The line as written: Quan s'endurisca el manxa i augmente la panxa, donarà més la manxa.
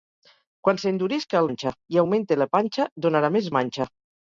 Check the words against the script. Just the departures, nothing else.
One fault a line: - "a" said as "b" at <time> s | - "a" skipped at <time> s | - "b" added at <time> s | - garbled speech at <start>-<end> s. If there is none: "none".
none